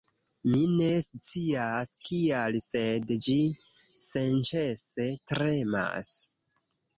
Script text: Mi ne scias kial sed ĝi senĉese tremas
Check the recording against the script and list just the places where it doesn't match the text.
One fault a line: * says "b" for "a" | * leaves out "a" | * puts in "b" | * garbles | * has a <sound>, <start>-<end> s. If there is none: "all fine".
all fine